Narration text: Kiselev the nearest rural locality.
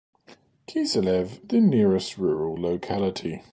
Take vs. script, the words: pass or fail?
pass